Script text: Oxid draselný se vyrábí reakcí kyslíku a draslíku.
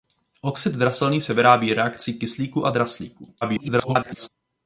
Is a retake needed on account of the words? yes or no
yes